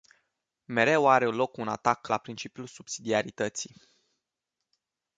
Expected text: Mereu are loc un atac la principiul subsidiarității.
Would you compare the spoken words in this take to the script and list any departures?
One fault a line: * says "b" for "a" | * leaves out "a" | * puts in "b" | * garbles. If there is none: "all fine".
all fine